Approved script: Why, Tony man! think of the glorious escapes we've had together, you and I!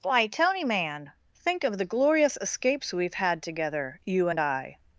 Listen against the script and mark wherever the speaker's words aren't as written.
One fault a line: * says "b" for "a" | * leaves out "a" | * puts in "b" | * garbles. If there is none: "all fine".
all fine